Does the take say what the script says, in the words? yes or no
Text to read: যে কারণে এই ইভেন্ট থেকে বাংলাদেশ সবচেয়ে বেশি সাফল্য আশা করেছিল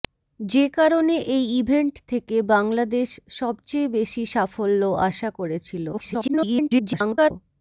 no